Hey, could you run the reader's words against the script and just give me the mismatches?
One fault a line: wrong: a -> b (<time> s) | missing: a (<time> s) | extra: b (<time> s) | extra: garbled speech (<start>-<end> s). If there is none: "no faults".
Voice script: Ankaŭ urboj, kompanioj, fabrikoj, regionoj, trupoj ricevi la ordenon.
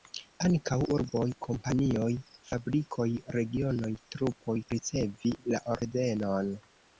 no faults